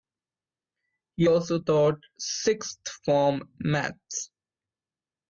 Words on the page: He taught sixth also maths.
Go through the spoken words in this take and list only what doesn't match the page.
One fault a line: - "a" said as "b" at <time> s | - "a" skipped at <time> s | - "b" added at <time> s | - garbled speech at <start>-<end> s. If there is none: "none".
- "also" added at 1.3 s
- "also" said as "form" at 3.1 s